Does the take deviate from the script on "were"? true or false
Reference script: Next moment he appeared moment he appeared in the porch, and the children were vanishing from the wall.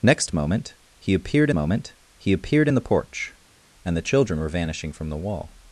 false